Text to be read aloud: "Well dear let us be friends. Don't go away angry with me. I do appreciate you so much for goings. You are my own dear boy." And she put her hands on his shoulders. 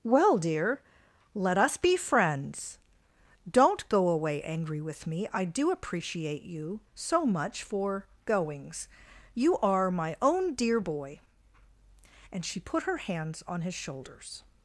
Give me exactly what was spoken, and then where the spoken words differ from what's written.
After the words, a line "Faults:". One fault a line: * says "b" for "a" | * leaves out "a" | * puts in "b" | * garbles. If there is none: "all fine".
"Well dear let us be friends. Don't go away angry with me. I do appreciate you so much for goings. You are my own dear boy." And she put her hands on his shoulders.
Faults:
all fine